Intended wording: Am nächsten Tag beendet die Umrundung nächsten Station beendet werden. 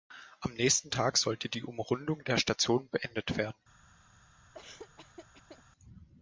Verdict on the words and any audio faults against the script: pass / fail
fail